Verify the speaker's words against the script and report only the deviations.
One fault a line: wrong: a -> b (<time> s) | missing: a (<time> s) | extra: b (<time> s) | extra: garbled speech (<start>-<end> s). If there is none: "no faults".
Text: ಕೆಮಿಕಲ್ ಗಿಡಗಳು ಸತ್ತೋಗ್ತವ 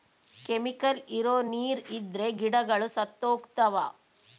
extra: ಇರೋ ನೀರ್ ಇದ್ರೆ (1.1 s)